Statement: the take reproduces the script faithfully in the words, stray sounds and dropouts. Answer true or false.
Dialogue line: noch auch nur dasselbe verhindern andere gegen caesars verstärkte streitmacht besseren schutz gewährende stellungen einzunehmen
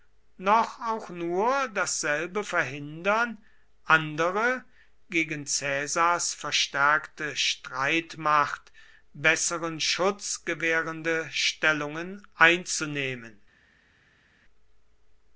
true